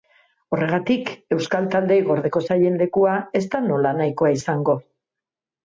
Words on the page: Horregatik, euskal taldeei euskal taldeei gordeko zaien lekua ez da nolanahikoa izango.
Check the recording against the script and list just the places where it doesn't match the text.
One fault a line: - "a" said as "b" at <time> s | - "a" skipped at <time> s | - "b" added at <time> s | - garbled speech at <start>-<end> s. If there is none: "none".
- "euskal taldeei" skipped at 2.0 s